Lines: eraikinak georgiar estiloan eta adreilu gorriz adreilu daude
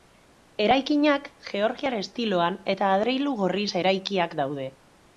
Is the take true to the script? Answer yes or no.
no